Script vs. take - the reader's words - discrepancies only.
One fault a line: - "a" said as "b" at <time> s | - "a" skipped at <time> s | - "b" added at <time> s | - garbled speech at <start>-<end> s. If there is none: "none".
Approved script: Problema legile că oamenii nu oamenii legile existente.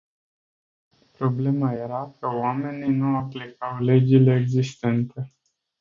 - "legile" said as "era" at 1.7 s
- "oamenii" said as "aplicau" at 3.2 s